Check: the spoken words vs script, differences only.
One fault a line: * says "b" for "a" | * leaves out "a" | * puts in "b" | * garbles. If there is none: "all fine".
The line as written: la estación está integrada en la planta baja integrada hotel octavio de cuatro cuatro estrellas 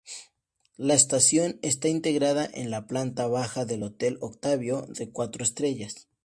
* says "del" for "integrada"
* leaves out "cuatro"